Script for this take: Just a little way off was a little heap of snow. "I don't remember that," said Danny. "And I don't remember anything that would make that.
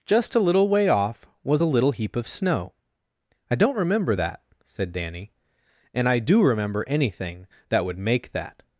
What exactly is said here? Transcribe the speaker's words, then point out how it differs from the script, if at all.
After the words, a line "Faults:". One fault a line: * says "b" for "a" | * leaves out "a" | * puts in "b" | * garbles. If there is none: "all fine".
Just a little way off was a little heap of snow. "I don't remember that," said Danny. "And I do remember anything that would make that.
Faults:
* says "do" for "don't"